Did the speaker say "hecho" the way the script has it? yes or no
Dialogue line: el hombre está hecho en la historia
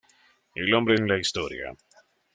no